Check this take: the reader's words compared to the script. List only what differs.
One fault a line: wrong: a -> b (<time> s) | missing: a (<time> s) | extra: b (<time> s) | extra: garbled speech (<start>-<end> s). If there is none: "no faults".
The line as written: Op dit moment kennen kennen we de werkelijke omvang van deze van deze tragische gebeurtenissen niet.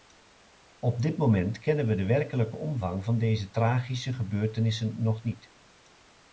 missing: kennen (1.9 s)
missing: van deze (3.5 s)
extra: nog (5.0 s)